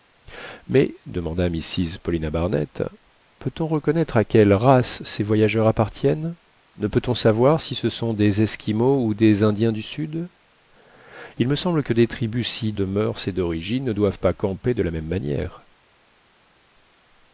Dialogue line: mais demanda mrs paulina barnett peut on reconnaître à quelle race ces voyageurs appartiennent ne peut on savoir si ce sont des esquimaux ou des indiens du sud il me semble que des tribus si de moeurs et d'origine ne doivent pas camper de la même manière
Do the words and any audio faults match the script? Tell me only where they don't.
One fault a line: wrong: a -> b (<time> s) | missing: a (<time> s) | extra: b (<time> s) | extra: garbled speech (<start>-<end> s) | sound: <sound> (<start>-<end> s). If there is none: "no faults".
no faults